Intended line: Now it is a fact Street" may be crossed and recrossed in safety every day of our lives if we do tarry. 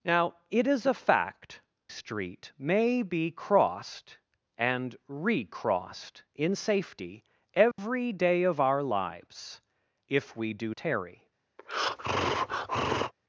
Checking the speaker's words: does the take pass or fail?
pass